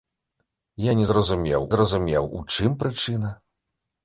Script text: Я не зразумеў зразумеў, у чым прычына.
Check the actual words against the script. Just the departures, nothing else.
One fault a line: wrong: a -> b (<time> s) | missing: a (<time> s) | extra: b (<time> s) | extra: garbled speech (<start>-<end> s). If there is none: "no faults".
no faults